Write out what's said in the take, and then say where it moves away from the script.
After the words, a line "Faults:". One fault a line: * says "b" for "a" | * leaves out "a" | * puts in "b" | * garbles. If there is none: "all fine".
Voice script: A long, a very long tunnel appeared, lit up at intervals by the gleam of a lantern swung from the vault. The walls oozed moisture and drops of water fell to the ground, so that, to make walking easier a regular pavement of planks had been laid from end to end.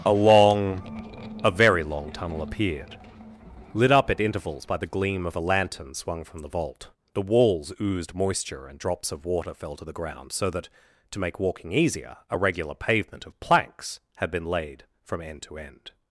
A long, a very long tunnel appeared, lit up at intervals by the gleam of a lantern swung from the vault. The walls oozed moisture and drops of water fell to the ground, so that, to make walking easier a regular pavement of planks had been laid from end to end.
Faults:
all fine